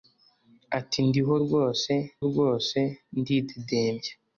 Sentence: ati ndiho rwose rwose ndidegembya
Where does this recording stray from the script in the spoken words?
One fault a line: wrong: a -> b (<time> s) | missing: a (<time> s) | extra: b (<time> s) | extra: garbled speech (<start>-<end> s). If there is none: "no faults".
no faults